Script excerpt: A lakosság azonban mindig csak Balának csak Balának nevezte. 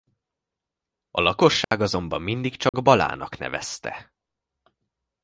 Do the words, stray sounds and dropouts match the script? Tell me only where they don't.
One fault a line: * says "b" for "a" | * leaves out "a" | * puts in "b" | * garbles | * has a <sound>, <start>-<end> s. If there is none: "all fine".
* has a dropout, 1.6-1.7 s
* has a dropout, 2.7-2.7 s
* leaves out "csak Balának"